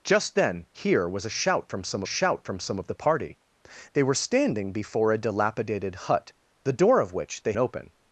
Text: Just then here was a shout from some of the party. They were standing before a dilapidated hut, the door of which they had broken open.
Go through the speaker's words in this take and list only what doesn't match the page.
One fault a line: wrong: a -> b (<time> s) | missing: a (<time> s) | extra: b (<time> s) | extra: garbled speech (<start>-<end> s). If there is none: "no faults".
extra: shout from some (2.0 s)
missing: had broken (7.5 s)